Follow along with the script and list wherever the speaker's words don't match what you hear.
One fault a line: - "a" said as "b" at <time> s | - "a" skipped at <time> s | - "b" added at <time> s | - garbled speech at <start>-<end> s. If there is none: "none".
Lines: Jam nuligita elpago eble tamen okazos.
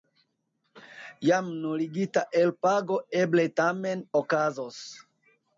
none